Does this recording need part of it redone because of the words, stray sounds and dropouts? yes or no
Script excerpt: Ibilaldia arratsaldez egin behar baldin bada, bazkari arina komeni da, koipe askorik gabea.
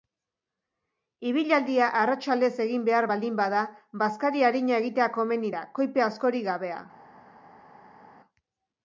yes